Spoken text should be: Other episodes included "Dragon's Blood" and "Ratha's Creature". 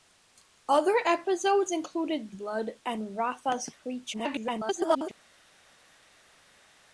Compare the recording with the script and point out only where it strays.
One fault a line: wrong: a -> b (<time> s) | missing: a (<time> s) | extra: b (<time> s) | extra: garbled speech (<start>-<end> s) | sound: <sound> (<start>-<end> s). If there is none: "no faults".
missing: Dragon's (2.3 s)
extra: garbled speech (4.1-5.1 s)